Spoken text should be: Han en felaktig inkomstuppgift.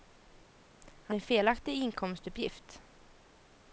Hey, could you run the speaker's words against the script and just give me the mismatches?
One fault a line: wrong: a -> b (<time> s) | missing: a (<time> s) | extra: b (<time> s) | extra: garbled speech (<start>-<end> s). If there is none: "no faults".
no faults